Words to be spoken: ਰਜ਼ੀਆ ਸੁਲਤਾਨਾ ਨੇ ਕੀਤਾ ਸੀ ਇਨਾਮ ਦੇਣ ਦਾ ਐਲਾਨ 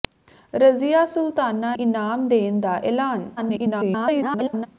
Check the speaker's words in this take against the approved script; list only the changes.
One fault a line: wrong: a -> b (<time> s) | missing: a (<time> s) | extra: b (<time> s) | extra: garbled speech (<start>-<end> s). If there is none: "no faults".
missing: ਨੇ ਕੀਤਾ ਸੀ (1.8 s)
extra: garbled speech (3.4-4.7 s)